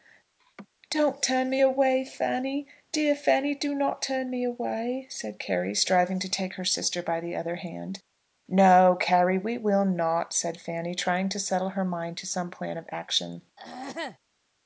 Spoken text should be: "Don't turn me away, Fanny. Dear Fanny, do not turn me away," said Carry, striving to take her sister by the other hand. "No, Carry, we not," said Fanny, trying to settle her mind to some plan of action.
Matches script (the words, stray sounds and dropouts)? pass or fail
fail